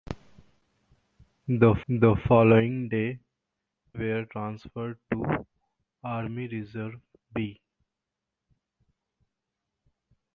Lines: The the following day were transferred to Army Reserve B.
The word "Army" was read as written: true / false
true